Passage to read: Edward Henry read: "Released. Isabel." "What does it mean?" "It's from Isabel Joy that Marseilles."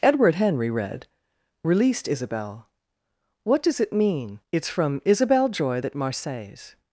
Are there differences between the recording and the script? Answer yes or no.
no